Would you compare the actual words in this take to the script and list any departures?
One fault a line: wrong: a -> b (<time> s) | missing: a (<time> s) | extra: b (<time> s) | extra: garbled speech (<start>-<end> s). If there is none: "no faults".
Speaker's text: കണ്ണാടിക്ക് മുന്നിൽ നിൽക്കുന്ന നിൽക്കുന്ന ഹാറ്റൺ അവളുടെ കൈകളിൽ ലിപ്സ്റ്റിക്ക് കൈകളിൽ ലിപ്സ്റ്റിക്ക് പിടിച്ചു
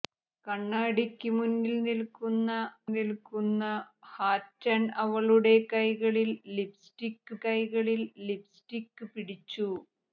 no faults